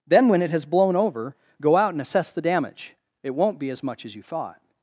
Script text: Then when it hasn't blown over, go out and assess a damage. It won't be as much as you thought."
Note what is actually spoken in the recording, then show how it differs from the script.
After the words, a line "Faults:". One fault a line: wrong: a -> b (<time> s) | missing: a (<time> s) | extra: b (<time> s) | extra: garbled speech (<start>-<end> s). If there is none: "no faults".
Then when it has blown over, go out and assess the damage. It won't be as much as you thought."
Faults:
wrong: hasn't -> has (0.5 s)
wrong: a -> the (2.3 s)